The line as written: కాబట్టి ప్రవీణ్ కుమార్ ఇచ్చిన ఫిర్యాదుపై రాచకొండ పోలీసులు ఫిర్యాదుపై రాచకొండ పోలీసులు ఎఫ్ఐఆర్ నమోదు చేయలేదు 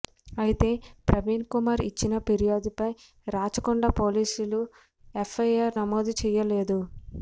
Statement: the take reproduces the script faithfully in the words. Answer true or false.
false